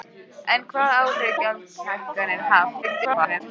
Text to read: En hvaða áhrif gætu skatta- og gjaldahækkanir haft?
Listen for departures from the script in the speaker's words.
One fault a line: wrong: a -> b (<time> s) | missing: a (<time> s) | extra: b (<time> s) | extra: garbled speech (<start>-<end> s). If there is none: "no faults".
missing: gætu skatta og (1.4 s)
extra: garbled speech (2.8-3.4 s)